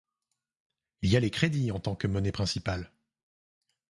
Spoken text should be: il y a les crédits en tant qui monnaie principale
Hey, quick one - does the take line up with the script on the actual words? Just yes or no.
no